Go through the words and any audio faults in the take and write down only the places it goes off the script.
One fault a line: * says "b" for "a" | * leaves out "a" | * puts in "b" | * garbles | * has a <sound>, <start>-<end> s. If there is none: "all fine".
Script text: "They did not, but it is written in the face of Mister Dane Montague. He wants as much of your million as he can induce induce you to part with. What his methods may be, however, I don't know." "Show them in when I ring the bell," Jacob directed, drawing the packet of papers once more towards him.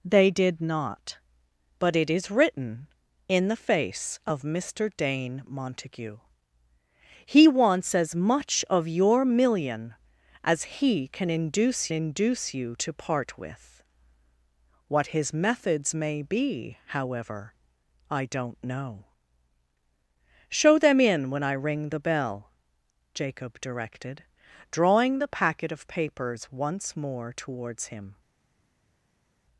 all fine